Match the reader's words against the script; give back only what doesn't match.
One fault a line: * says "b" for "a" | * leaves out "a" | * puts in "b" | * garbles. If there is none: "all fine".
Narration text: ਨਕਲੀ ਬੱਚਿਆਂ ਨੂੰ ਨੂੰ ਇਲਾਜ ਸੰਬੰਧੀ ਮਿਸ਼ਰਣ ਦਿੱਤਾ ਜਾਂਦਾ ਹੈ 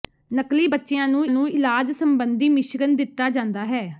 all fine